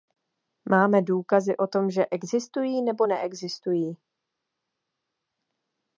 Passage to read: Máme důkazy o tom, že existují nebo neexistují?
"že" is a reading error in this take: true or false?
false